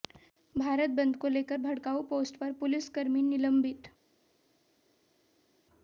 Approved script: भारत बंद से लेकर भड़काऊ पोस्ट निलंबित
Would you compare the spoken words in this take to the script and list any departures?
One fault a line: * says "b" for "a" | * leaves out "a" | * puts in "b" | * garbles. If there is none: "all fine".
* says "को" for "से"
* puts in "पर पुलिसकर्मी"